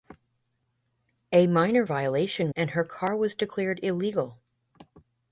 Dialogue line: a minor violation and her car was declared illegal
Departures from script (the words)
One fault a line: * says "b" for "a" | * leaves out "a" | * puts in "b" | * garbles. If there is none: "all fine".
all fine